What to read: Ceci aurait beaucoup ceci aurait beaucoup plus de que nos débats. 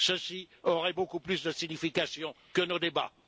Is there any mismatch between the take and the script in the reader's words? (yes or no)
yes